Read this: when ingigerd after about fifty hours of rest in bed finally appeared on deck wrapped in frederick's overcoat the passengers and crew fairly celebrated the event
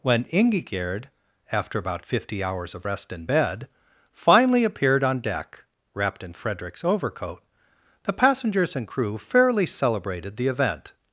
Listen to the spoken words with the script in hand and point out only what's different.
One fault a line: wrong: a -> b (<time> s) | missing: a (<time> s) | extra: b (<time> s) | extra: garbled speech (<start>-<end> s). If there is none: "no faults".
no faults